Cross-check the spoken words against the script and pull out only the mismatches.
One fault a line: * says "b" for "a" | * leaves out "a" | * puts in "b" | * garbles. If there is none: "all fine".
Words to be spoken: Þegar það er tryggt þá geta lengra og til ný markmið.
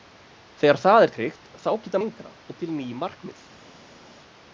all fine